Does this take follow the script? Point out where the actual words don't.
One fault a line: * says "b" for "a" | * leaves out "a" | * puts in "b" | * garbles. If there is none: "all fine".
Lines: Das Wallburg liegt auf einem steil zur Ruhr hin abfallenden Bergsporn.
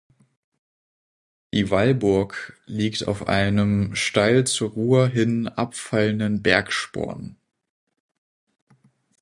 * says "Die" for "Das"